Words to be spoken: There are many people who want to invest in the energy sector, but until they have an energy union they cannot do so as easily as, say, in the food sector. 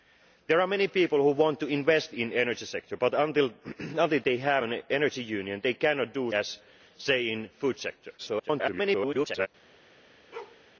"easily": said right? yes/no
no